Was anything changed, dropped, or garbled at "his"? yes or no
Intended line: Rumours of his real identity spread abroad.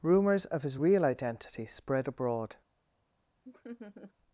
no